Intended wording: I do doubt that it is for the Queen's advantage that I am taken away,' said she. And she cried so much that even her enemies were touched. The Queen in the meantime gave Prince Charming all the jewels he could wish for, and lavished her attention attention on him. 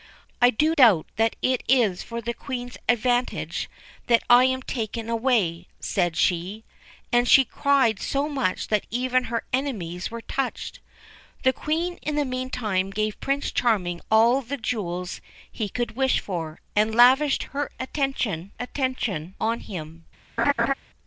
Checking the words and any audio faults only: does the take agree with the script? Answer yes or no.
no